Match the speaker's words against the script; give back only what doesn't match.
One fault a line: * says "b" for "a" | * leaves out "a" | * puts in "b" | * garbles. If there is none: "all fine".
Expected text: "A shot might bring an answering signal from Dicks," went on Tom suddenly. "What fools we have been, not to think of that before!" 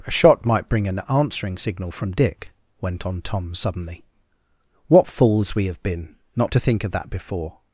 * says "Dick" for "Dicks"